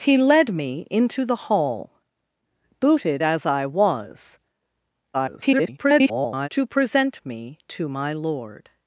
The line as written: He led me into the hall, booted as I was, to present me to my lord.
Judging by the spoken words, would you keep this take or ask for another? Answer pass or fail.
fail